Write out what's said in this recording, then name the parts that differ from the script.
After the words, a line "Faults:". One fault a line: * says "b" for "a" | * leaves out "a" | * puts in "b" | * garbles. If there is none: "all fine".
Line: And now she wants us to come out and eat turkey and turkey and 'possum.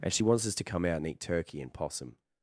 And she wants us to come out and eat turkey and 'possum.
Faults:
* leaves out "now"
* leaves out "turkey and"